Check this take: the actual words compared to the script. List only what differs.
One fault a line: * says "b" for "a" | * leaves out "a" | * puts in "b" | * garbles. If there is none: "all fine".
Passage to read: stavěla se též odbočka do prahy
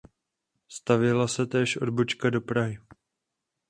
all fine